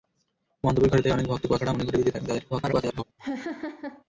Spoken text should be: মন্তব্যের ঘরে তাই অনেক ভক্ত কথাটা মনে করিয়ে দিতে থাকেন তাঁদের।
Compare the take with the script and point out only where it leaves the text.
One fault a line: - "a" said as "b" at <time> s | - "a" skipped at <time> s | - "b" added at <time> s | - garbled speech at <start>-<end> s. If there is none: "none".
- garbled speech at 2.5-3.0 s